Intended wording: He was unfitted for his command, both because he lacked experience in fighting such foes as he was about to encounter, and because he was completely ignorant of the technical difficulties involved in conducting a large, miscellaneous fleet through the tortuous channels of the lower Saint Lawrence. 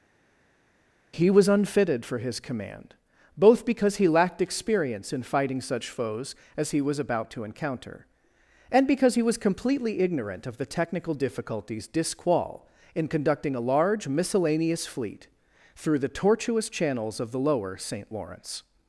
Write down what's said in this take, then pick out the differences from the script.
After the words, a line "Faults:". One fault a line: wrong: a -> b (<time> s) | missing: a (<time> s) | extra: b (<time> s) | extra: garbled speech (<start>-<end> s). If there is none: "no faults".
He was unfitted for his command, both because he lacked experience in fighting such foes as he was about to encounter, and because he was completely ignorant of the technical difficulties disqual in conducting a large, miscellaneous fleet through the tortuous channels of the lower Saint Lawrence.
Faults:
wrong: involved -> disqual (11.9 s)